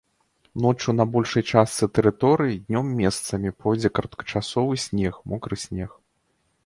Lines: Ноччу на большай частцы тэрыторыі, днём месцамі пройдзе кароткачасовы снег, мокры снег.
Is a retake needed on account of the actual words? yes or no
no